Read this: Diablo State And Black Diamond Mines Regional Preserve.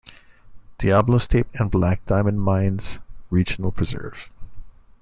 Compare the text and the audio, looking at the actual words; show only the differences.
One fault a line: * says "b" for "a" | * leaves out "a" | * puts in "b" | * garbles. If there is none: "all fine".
all fine